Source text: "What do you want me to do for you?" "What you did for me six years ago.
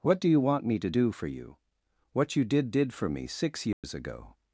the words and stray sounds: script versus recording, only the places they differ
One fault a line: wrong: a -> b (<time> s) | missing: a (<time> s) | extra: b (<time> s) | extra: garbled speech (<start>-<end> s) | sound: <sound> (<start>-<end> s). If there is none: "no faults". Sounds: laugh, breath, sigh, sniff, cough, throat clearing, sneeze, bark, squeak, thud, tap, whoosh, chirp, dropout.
extra: did (2.7 s)
sound: dropout (3.7-3.8 s)